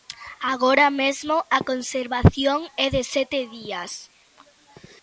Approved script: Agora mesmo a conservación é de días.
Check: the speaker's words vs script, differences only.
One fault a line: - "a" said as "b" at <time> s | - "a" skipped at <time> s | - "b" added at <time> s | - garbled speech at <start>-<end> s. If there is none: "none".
- "sete" added at 3.1 s